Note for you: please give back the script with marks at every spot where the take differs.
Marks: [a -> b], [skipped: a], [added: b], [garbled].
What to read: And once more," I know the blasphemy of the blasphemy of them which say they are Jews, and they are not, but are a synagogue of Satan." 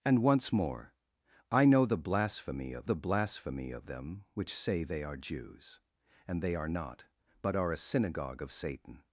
And once more," I know the blasphemy of the blasphemy of them which say they are Jews, and they are not, but are a synagogue of Satan."